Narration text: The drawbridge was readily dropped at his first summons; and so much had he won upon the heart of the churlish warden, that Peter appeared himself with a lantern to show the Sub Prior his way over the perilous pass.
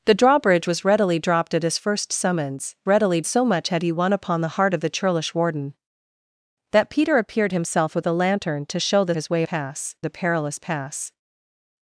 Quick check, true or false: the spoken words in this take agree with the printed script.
false